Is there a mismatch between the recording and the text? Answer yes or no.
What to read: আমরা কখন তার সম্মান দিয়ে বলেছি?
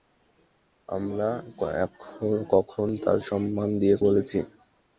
no